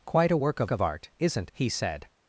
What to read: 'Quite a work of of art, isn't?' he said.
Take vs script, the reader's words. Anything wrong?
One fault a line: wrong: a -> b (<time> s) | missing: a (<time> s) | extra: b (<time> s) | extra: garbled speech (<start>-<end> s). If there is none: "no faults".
no faults